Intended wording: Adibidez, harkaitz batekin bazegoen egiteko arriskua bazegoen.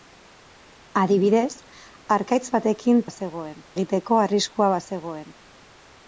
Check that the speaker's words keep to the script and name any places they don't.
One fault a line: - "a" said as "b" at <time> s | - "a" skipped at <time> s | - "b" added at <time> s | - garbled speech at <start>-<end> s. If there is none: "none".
none